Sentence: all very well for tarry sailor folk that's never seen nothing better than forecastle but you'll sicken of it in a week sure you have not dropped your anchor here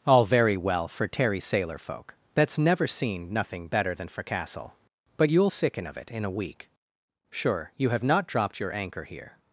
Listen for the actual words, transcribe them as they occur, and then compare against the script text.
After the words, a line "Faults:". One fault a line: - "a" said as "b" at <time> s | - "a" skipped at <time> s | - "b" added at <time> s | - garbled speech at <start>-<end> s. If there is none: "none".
all very well for tarry sailor folk that's never seen nothing better than forecastle but you'll sicken of it in a week sure you have not dropped your anchor here
Faults:
none